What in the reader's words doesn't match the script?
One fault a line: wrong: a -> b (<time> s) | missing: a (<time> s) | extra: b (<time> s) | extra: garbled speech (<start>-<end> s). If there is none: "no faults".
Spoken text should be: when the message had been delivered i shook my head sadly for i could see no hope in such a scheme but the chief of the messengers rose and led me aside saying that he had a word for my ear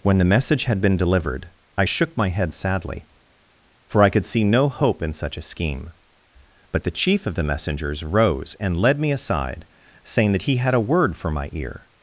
no faults